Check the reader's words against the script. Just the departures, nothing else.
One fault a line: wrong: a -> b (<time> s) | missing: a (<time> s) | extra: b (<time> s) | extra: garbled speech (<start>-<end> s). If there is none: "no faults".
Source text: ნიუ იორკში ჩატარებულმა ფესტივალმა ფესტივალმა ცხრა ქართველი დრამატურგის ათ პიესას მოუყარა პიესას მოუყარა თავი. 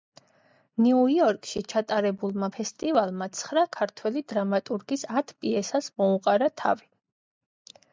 missing: ფესტივალმა (3.3 s)
missing: პიესას მოუყარა (6.5 s)